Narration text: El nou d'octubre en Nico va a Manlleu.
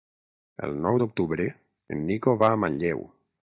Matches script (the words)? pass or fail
pass